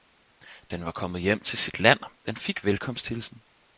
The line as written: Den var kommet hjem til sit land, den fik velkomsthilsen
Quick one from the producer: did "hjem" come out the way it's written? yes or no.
yes